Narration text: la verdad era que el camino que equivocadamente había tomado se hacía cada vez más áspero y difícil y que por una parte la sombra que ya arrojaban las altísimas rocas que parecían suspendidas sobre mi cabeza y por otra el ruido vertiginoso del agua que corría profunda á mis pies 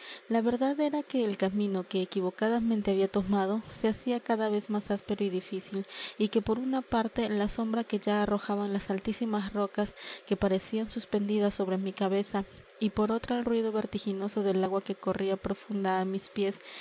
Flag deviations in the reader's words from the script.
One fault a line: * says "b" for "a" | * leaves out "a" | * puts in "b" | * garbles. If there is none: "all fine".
all fine